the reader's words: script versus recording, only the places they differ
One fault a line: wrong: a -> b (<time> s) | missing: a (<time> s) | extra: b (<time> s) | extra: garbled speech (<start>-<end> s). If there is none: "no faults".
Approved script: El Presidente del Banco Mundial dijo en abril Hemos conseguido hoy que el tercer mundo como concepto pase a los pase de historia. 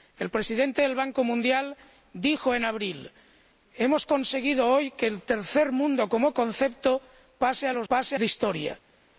no faults